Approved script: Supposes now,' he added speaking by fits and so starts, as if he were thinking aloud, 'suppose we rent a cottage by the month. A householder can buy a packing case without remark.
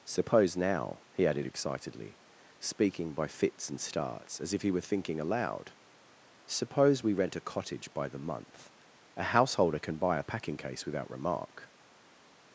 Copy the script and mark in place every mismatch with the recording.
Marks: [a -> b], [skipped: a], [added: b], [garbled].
[Supposes -> Suppose] now,' he added [added: excitedly] speaking by fits and [skipped: so] starts, as if he were thinking aloud, 'suppose we rent a cottage by the month. A householder can buy a packing case without remark.